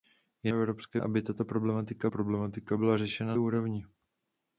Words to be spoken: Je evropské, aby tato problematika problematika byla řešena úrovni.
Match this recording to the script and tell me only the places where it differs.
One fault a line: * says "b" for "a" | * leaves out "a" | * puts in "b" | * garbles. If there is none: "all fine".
all fine